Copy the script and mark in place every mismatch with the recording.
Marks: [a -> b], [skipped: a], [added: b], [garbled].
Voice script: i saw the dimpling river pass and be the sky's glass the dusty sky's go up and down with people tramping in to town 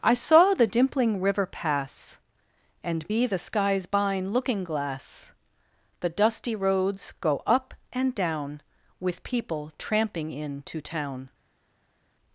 i saw the dimpling river pass and be the sky's [added: bine looking] glass the dusty [sky's -> roads] go up and down with people tramping in to town